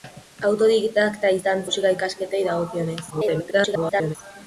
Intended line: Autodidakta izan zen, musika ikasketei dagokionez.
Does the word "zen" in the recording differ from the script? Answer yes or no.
yes